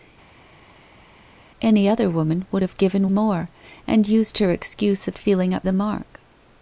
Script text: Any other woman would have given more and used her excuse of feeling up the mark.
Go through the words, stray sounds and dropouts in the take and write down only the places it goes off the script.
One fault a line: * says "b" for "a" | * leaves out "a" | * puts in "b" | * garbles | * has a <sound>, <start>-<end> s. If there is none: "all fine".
all fine